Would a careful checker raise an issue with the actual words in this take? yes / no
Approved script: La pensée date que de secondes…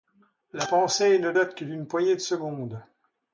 yes